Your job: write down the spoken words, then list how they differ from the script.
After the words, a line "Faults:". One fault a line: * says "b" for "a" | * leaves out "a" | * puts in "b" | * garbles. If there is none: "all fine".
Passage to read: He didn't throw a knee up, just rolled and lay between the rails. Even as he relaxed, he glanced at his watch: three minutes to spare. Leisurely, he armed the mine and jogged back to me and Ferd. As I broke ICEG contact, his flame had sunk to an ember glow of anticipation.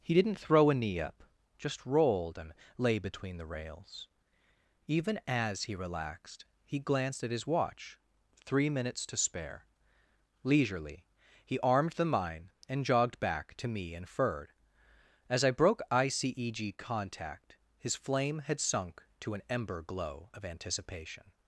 He didn't throw a knee up, just rolled and lay between the rails. Even as he relaxed, he glanced at his watch: three minutes to spare. Leisurely, he armed the mine and jogged back to me and Ferd. As I broke ICEG contact, his flame had sunk to an ember glow of anticipation.
Faults:
all fine